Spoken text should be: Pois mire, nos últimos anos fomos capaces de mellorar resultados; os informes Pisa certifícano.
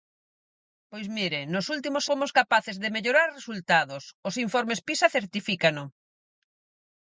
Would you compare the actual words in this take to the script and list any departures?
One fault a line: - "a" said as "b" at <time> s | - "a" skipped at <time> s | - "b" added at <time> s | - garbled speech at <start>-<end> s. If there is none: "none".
- "anos" skipped at 2.0 s